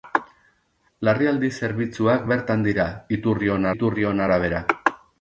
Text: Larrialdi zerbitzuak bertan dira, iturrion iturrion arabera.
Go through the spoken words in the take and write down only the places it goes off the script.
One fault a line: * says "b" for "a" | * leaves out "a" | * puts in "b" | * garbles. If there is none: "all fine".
all fine